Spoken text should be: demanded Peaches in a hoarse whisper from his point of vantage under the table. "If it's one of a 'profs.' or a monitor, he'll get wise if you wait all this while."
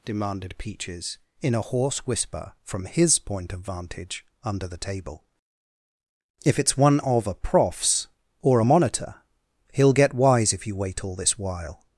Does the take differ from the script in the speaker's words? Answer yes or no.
no